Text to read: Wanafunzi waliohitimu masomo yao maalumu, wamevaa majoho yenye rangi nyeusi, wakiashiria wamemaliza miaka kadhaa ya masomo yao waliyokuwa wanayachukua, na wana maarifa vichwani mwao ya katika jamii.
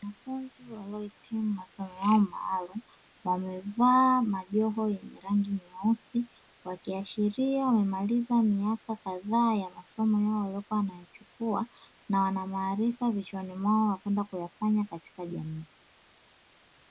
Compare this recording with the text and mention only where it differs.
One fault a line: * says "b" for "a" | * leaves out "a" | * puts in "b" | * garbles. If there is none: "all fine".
* puts in "kwenda kuyafanya"